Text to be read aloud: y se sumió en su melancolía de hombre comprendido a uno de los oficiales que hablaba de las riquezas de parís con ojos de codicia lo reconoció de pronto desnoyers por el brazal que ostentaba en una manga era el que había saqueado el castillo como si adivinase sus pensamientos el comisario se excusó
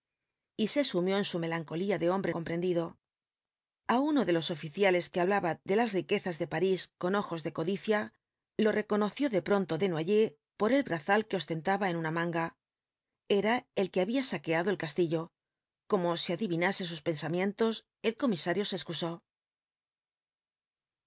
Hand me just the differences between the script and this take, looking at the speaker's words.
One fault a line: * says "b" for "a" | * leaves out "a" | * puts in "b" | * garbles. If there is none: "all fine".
all fine